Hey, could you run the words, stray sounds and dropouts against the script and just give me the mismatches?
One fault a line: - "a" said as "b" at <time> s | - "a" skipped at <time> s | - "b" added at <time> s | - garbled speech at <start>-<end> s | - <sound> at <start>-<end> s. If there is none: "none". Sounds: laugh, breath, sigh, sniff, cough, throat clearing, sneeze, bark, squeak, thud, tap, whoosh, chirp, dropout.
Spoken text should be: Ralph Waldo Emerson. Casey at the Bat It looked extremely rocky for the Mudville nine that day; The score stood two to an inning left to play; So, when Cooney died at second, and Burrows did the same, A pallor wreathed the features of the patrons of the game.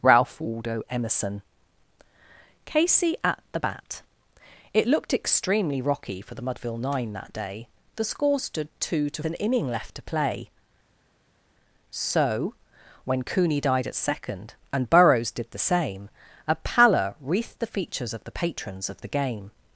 none